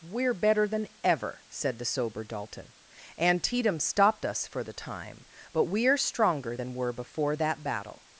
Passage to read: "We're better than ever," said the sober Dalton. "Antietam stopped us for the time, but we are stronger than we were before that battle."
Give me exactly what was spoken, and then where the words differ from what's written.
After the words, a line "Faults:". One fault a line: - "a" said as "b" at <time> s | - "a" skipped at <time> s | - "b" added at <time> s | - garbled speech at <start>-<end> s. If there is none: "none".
"We're better than ever," said the sober Dalton. "Antietam stopped us for the time, but we are stronger than were before that battle."
Faults:
- "we" skipped at 6.7 s